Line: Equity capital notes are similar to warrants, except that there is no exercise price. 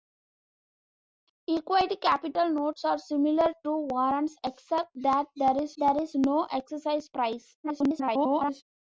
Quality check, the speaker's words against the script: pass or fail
fail